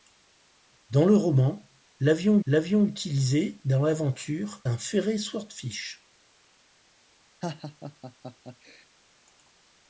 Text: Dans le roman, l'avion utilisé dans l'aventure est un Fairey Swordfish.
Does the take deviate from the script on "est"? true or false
true